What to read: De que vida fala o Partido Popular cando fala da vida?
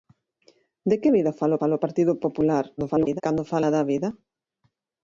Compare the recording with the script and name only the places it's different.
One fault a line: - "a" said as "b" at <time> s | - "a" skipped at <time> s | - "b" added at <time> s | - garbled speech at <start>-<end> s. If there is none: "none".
- "fala" added at 1.6 s
- garbled speech at 2.8-3.2 s